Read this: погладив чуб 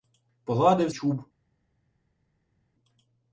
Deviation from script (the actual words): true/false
false